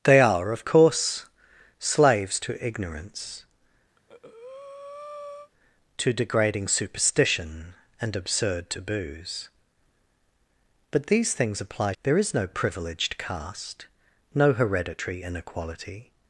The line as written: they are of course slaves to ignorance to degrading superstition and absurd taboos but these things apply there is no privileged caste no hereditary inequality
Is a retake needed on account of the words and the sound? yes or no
yes